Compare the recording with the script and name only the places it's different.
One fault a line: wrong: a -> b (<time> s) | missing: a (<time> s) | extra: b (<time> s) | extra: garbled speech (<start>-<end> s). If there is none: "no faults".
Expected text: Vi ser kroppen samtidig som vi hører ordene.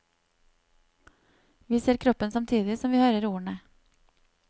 no faults